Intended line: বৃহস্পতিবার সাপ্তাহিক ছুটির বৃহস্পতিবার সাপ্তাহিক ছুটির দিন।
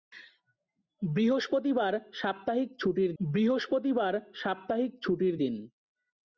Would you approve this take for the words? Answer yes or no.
yes